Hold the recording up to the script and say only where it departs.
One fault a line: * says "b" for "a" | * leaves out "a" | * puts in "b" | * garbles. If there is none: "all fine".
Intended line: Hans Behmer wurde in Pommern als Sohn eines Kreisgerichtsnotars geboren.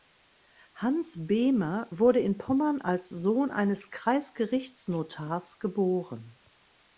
all fine